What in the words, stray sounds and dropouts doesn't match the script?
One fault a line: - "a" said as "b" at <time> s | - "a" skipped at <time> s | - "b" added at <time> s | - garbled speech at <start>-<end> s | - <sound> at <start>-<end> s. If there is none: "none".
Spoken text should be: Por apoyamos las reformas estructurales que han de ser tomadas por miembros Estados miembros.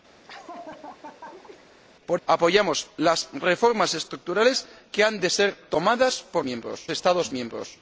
- laugh at 0.2-1.7 s